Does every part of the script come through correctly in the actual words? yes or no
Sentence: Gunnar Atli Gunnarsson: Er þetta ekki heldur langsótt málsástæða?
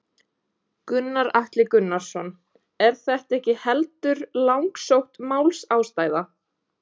yes